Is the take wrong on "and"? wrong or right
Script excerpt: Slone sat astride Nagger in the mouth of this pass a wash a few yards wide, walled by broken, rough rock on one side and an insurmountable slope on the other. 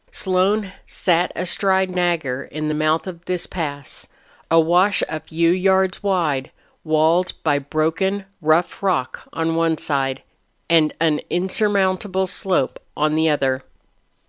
right